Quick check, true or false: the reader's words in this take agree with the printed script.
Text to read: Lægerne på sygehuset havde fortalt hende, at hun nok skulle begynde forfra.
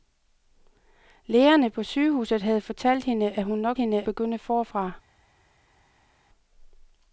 false